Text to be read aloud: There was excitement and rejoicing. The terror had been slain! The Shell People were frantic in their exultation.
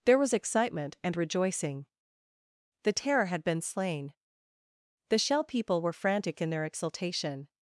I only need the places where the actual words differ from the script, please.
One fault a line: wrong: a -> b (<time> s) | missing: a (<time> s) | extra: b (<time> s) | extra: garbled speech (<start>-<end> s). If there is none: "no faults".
no faults